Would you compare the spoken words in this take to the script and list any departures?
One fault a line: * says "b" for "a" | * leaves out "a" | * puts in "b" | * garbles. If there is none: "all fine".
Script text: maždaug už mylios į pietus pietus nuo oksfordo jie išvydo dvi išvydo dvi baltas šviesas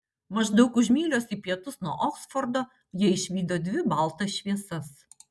* leaves out "pietus"
* leaves out "išvydo dvi"